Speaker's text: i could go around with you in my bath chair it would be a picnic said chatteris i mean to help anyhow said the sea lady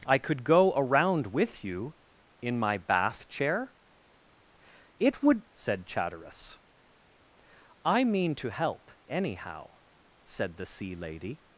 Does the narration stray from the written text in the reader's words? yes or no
yes